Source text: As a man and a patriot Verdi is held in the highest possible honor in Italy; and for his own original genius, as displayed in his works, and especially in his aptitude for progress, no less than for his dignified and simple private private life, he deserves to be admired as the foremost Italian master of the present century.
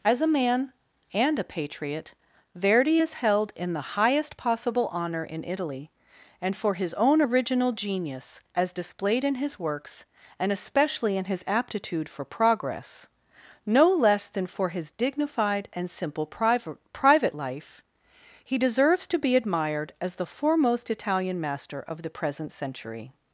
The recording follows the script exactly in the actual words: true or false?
true